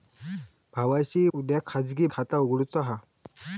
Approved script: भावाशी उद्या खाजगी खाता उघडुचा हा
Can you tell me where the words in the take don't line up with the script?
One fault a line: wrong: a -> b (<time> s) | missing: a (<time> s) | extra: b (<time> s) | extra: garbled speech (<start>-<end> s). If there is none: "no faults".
no faults